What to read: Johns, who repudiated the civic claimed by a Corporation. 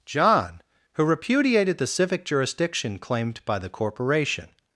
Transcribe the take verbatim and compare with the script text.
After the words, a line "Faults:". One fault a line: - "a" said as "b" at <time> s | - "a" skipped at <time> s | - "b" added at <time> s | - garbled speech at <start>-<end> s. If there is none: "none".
John, who repudiated the civic jurisdiction claimed by the Corporation.
Faults:
- "Johns" said as "John" at 0.1 s
- "jurisdiction" added at 2.2 s
- "a" said as "the" at 3.6 s